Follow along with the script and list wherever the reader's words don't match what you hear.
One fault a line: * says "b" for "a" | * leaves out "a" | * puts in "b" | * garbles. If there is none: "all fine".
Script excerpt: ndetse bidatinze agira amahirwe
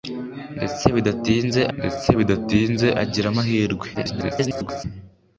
* puts in "ndetse bidatinze"
* garbles